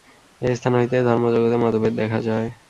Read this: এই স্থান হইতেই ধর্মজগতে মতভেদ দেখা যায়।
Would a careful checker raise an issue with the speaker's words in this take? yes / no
no